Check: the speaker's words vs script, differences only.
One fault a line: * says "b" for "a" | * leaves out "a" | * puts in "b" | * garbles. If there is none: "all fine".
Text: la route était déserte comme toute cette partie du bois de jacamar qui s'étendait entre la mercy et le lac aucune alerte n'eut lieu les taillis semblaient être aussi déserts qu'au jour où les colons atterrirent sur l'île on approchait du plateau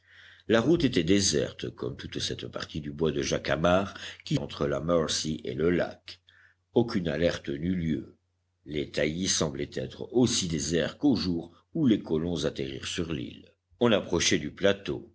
* leaves out "s'étendait"